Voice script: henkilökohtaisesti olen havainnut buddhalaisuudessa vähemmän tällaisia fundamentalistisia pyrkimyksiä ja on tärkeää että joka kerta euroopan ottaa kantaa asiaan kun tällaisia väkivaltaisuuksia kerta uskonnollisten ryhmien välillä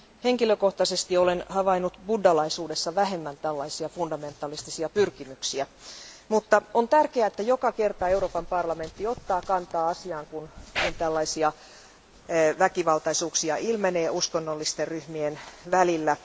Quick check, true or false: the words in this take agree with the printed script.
false